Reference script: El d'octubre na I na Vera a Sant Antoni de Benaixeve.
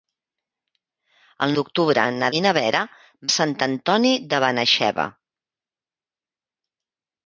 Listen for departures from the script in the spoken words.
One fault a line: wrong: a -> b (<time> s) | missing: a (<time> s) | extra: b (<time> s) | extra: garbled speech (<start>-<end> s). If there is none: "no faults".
no faults